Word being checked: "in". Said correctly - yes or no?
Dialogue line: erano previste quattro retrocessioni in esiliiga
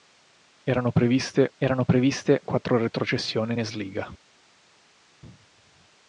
no